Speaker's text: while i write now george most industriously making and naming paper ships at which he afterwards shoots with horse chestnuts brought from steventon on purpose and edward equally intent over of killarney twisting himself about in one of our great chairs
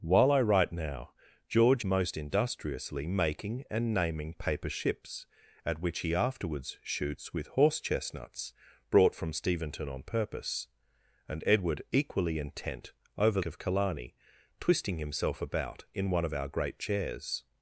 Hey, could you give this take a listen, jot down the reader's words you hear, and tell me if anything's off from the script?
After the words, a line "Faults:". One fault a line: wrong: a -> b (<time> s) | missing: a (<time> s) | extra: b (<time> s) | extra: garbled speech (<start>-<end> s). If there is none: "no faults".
while i write now george most industriously making and naming paper ships at which he afterwards shoots with horse chestnuts brought from steventon on purpose and edward equally intent over of killarney twisting himself about in one of our great chairs
Faults:
no faults